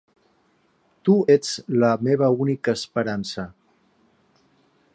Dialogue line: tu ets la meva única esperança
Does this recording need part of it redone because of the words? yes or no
no